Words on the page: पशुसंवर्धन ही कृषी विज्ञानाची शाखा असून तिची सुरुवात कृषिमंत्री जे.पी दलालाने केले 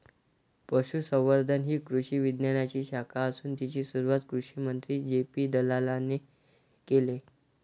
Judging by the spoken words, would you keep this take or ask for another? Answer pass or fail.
pass